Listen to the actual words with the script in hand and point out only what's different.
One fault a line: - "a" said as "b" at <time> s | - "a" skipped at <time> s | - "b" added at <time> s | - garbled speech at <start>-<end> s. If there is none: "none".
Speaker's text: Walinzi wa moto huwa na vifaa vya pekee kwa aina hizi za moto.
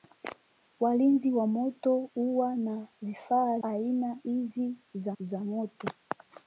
- "vya pekee kwa" skipped at 3.6 s
- "za" added at 5.2 s